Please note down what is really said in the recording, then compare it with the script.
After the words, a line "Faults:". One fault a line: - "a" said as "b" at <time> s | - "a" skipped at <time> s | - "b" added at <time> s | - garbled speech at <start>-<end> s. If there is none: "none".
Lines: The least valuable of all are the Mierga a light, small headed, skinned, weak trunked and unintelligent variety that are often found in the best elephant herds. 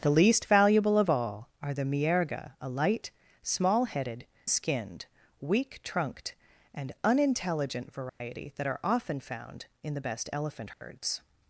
The least valuable of all are the Mierga a light, small headed, skinned, weak trunked and unintelligent variety that are often found in the best elephant herds.
Faults:
none